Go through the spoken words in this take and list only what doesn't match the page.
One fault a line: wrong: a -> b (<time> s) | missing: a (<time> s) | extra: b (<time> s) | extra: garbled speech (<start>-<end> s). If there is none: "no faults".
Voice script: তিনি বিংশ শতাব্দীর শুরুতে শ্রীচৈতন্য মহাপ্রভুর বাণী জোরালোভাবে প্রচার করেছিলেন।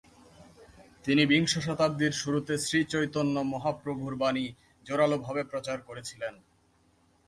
no faults